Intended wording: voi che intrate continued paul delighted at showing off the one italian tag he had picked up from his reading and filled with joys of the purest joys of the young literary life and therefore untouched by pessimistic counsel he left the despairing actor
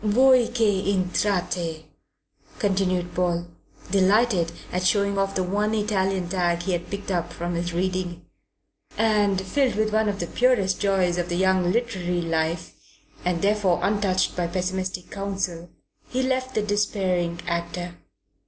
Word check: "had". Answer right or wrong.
right